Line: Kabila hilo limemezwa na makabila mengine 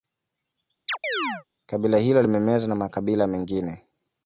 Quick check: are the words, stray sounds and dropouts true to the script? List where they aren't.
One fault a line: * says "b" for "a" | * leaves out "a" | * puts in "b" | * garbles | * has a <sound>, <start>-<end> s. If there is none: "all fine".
* has a chirp, 0.9-1.4 s